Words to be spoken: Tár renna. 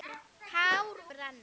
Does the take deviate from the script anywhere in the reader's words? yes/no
no